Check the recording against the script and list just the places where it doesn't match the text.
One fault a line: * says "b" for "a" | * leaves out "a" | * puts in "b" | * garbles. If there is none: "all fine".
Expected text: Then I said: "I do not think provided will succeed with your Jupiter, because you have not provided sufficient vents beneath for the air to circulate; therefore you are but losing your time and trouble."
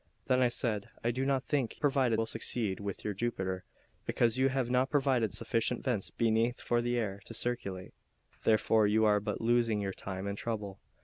all fine